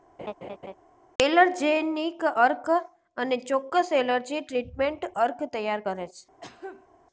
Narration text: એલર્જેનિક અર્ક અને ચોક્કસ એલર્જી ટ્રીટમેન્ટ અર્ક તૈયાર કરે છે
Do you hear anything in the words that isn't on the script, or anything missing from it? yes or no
no